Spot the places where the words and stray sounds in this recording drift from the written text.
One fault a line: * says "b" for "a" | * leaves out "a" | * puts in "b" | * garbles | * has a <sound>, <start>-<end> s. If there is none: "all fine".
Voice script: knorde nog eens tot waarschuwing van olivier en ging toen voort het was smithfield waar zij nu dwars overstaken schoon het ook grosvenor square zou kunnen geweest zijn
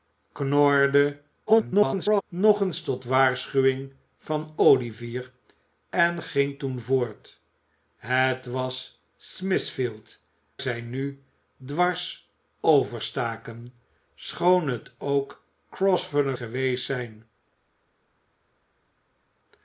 * garbles
* leaves out "waar"
* leaves out "square zou kunnen"